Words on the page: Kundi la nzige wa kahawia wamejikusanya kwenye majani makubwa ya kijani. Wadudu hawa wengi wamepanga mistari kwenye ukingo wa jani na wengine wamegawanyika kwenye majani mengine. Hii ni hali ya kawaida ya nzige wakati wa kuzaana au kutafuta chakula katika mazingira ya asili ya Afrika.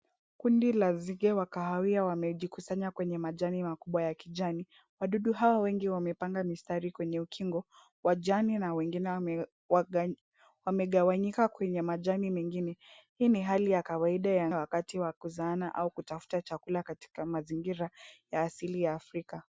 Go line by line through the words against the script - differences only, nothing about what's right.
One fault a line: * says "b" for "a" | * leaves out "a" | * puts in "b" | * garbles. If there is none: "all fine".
* leaves out "nzige"